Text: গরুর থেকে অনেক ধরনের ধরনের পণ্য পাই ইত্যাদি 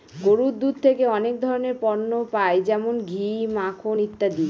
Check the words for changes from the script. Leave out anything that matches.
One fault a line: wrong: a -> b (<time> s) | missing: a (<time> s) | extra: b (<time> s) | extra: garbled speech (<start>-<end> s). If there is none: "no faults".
extra: দুধ (0.6 s)
missing: ধরনের (1.8 s)
extra: যেমন ঘি মাখন (2.7 s)